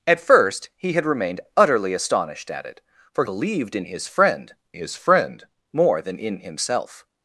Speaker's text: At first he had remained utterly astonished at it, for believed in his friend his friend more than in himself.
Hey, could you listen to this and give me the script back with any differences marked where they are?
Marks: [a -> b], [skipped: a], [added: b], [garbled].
At first he had remained utterly astonished at it, for believed in his friend his friend more than in himself.